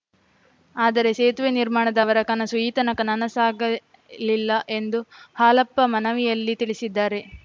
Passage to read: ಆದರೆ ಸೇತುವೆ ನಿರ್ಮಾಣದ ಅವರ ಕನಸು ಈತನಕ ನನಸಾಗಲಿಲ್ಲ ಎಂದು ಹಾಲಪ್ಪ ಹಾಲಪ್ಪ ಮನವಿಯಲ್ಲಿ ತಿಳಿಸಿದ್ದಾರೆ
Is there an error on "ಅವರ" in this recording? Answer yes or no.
no